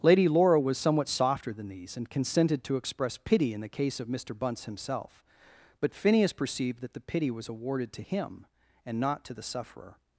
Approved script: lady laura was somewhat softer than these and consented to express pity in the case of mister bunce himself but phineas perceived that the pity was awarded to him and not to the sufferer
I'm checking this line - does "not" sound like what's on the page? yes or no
yes